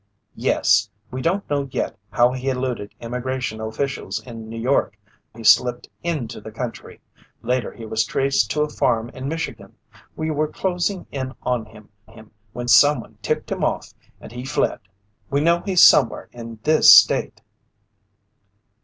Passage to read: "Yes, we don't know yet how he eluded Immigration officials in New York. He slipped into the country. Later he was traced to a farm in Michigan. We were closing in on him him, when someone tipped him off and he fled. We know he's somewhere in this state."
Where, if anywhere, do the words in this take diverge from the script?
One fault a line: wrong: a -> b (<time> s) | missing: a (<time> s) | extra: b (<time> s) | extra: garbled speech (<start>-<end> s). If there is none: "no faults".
no faults